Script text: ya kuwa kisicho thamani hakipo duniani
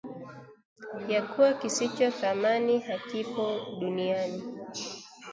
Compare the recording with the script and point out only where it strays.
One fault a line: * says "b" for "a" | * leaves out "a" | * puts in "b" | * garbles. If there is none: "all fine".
all fine